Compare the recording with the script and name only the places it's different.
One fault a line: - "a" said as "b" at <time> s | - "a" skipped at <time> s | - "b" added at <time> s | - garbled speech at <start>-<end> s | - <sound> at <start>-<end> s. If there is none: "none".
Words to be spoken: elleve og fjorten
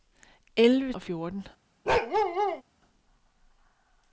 - bark at 1.9-2.6 s